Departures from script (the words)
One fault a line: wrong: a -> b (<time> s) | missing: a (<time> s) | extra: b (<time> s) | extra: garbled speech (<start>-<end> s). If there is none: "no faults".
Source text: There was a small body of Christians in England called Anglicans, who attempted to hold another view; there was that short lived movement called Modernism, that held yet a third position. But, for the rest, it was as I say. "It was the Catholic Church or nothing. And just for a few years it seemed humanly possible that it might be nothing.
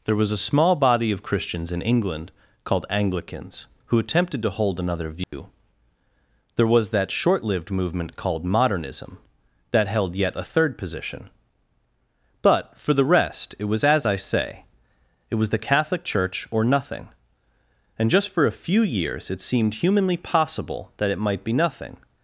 no faults